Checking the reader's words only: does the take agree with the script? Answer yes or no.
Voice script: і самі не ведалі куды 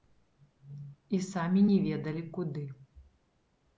yes